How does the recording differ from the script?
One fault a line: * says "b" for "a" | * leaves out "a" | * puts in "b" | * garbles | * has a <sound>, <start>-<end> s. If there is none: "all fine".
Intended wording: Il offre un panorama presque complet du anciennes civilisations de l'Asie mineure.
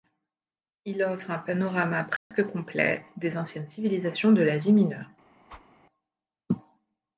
* has a dropout, 2.2-2.3 s
* says "des" for "du"
* has a whoosh, 5.5-5.7 s